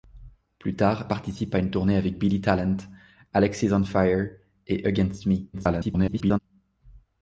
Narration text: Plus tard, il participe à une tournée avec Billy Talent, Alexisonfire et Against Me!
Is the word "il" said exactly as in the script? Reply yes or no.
no